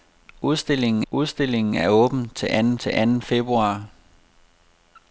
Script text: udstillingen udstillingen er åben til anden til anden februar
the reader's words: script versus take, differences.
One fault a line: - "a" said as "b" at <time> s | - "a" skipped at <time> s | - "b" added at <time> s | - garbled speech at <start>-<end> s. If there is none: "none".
none